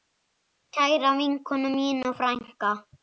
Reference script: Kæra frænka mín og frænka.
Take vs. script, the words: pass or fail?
fail